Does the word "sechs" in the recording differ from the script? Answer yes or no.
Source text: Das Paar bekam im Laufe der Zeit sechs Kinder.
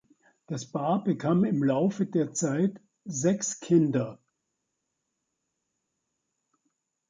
no